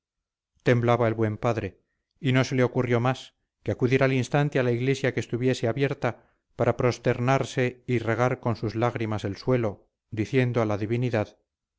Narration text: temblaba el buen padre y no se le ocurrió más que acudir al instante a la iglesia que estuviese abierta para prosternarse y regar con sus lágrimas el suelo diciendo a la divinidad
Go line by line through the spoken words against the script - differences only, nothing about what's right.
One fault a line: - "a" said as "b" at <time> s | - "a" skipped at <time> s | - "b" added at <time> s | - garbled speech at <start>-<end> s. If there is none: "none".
none